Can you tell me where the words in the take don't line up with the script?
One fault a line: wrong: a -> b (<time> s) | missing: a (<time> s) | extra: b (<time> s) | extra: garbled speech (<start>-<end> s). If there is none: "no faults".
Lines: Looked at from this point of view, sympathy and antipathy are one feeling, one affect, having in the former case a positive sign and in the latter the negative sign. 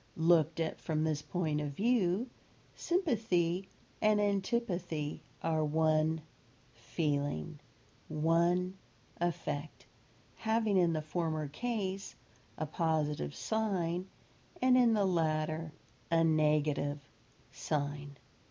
wrong: the -> a (16.1 s)